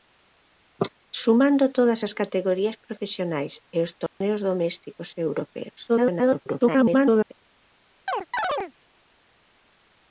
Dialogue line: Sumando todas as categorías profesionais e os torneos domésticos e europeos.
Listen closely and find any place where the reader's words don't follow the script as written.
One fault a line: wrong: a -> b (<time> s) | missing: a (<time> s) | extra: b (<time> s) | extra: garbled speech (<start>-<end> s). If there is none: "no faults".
extra: garbled speech (5.9-7.3 s)